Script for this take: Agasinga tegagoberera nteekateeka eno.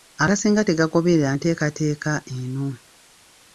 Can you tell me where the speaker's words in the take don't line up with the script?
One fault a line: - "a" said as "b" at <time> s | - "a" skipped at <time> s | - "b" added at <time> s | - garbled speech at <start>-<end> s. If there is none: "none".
none